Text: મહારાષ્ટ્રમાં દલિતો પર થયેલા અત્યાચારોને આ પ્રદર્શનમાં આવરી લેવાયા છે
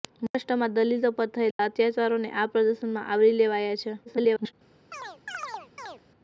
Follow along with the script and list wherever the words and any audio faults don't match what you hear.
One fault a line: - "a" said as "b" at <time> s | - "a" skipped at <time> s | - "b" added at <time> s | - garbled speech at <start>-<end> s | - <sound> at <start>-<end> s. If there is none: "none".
- dropout at 1.5-1.6 s
- garbled speech at 4.1-4.5 s
- chirp at 4.9-6.0 s